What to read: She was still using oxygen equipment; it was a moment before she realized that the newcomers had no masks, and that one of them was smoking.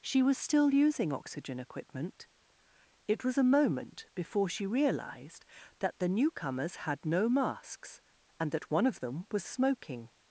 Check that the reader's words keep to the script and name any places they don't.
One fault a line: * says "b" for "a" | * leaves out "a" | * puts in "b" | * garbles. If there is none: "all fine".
all fine